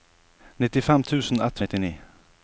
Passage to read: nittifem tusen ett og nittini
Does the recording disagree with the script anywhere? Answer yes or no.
no